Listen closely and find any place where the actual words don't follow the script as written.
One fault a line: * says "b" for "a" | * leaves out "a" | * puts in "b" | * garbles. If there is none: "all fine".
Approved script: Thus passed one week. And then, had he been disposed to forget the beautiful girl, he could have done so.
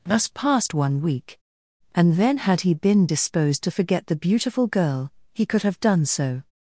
all fine